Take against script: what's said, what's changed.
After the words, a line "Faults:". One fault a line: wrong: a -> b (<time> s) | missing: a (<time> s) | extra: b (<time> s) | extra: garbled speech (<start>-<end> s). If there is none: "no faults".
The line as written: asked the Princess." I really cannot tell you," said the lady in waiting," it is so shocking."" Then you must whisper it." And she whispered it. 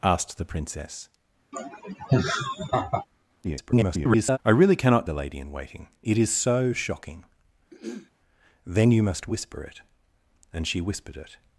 asked the Princess." [garbled] I really cannot the lady in waiting," it is so shocking."" Then you must whisper it." And she whispered it.
Faults:
extra: garbled speech (3.4-4.4 s)
missing: tell you said (5.1 s)